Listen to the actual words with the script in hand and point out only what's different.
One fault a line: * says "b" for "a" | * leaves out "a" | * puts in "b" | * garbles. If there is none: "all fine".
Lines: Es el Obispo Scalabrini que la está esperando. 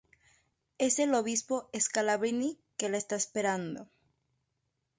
all fine